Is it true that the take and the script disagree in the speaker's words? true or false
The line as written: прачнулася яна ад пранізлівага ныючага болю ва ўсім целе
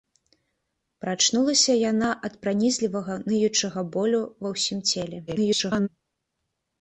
true